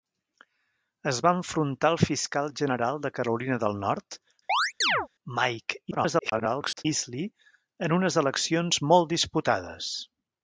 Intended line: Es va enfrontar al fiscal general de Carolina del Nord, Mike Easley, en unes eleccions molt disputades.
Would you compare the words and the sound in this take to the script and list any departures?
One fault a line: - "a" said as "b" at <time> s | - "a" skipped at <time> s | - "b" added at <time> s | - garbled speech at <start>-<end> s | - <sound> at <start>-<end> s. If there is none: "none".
- chirp at 4.5-5.1 s
- garbled speech at 5.9-6.9 s